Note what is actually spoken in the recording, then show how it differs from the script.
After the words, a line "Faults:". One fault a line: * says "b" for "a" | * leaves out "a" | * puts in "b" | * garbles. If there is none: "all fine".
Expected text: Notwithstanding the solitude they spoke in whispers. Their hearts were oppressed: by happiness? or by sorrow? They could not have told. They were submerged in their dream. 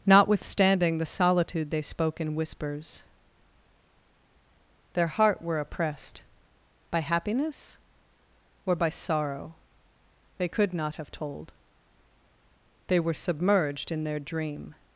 Notwithstanding the solitude they spoke in whispers. Their heart were oppressed: by happiness? or by sorrow? They could not have told. They were submerged in their dream.
Faults:
* says "heart" for "hearts"